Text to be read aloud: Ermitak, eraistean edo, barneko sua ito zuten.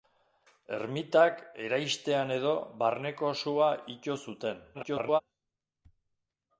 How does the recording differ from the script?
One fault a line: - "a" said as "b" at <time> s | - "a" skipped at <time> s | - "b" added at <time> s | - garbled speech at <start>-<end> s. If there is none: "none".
- garbled speech at 4.7-5.2 s